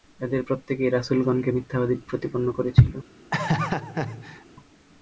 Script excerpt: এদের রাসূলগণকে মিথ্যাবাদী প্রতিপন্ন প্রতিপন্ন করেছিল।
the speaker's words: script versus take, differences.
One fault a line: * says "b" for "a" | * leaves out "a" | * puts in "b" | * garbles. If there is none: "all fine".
* puts in "প্রত্যেকেই"
* leaves out "প্রতিপন্ন"